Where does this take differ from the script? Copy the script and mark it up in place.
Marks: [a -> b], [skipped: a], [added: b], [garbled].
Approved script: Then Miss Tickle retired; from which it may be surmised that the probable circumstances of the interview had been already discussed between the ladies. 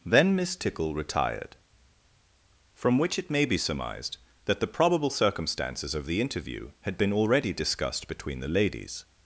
Then Miss Tickle retired; from which it may be surmised that the probable circumstances of the interview had been already discussed between the ladies.